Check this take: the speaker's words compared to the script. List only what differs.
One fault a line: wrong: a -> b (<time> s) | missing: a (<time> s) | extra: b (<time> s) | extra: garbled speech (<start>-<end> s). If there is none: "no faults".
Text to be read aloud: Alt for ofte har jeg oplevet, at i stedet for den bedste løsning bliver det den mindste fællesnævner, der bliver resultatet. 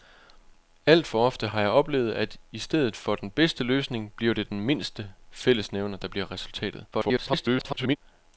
extra: garbled speech (6.9-8.0 s)